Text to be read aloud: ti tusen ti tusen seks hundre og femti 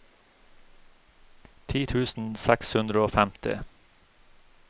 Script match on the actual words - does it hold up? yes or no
no